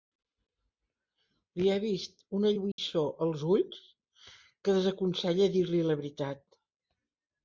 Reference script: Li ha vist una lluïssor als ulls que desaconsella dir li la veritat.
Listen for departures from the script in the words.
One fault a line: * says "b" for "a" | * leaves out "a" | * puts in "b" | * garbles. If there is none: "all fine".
all fine